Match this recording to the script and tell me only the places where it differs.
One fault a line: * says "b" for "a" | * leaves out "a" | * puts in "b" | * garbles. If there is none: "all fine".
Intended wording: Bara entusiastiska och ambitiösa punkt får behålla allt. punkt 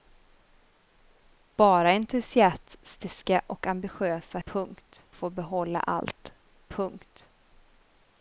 all fine